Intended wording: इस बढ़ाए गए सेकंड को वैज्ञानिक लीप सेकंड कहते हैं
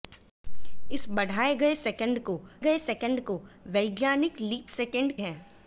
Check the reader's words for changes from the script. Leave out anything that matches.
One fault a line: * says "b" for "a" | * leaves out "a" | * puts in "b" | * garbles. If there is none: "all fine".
* puts in "गए सेकंड को"
* leaves out "कहते"